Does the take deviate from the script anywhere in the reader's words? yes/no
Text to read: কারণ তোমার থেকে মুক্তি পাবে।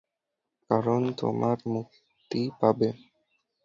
yes